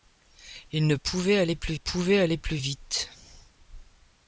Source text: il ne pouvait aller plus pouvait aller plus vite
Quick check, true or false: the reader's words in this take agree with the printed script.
true